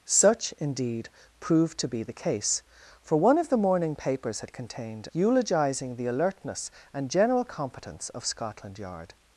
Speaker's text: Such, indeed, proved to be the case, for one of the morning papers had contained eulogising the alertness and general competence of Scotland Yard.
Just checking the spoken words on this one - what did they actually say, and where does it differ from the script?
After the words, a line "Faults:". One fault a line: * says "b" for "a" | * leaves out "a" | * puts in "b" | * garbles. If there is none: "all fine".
Such, indeed, proved to be the case, for one of the morning papers had contained eulogising the alertness and general competence of Scotland Yard.
Faults:
all fine